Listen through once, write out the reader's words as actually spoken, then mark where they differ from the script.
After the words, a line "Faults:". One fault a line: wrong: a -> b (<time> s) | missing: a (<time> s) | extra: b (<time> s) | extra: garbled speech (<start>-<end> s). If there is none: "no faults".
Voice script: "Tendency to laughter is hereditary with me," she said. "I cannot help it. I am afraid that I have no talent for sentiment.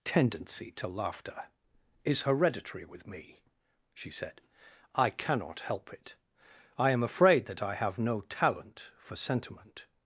"Tendency to laughter is hereditary with me," she said. "I cannot help it. I am afraid that I have no talent for sentiment.
Faults:
no faults